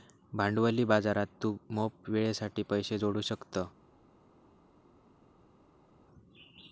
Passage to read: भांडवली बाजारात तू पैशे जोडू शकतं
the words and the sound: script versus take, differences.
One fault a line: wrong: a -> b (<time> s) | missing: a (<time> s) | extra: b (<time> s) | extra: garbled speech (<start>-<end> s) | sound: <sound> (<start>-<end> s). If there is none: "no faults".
extra: मोप वेळेसाठी (1.7 s)